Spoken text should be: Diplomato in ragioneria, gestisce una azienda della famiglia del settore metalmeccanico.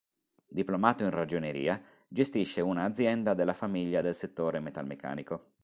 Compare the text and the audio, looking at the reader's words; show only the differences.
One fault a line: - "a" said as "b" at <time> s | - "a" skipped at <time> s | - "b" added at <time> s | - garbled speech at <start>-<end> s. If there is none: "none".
none